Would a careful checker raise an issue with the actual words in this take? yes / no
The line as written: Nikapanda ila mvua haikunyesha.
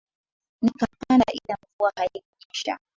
no